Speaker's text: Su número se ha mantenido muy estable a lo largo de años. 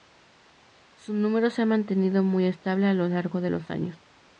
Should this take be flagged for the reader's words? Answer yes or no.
yes